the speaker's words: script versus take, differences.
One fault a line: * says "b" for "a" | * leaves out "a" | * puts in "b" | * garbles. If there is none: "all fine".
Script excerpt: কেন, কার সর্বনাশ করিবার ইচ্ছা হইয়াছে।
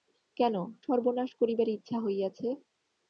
* leaves out "কার"